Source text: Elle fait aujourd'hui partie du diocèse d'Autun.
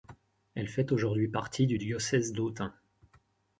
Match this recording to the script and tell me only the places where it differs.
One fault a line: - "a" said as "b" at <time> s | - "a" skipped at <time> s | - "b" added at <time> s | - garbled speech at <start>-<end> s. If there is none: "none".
none